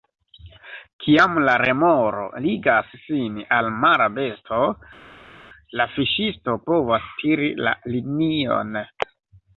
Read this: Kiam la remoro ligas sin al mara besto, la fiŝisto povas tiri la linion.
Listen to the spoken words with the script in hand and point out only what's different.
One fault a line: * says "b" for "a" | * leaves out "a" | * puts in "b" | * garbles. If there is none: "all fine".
all fine